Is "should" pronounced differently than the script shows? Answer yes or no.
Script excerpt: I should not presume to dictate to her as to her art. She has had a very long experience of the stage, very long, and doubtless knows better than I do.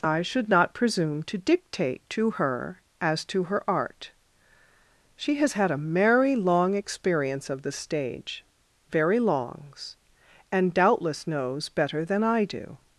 no